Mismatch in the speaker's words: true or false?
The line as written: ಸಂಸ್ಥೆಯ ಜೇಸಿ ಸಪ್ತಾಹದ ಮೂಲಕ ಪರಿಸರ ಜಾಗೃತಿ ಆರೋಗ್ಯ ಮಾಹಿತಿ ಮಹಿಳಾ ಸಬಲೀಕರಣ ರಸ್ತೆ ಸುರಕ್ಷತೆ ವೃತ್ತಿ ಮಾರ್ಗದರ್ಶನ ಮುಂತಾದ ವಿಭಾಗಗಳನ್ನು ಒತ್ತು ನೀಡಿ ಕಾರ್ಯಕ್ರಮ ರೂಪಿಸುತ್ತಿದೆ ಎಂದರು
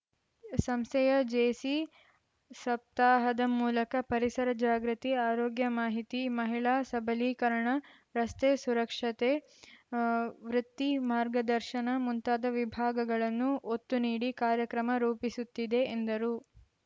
false